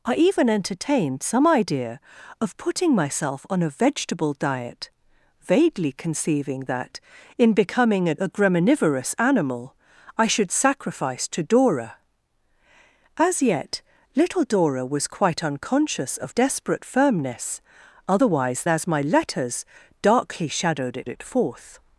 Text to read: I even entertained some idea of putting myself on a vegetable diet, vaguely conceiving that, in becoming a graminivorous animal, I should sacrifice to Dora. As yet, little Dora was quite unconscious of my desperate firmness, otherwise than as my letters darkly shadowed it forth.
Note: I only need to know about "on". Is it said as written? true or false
true